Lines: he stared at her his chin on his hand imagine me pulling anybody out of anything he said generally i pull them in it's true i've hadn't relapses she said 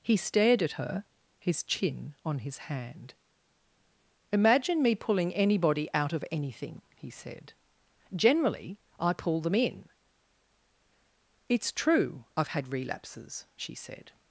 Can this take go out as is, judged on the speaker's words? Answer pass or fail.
fail